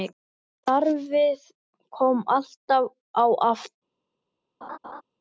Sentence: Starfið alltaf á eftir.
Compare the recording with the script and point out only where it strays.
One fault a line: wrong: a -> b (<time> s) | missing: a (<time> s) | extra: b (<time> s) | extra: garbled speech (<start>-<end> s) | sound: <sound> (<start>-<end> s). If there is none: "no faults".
extra: kom (2.0 s)
sound: laugh (4.6-5.0 s)